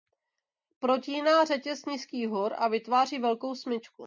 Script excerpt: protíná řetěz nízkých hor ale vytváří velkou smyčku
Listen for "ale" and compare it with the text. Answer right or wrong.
wrong